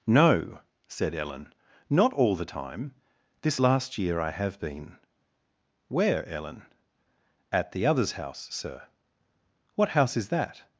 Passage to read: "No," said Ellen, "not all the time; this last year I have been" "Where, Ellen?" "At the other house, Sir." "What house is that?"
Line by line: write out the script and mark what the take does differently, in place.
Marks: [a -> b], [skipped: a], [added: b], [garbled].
"No," said Ellen, "not all the time; this last year I have been" "Where, Ellen?" "At the [other -> others] house, Sir." "What house is that?"